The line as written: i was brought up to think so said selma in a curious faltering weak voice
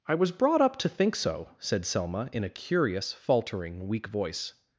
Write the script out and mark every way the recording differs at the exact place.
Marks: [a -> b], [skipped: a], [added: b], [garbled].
i was brought up to think so said selma in a curious faltering weak voice